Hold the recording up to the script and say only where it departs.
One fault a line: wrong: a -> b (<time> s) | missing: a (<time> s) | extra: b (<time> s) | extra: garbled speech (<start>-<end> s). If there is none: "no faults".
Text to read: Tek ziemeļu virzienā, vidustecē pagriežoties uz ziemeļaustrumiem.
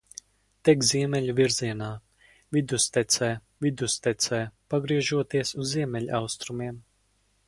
extra: vidustecē (3.7 s)